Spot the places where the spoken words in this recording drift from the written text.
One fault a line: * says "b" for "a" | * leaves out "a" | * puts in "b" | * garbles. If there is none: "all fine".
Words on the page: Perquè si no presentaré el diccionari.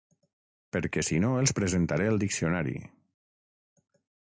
* puts in "els"